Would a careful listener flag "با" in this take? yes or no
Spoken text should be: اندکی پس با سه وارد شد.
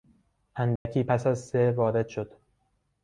yes